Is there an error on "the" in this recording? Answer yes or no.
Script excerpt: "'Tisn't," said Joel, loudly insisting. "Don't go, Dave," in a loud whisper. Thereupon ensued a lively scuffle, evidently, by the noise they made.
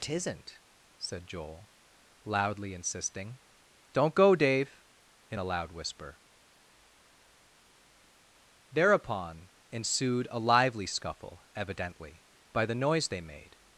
no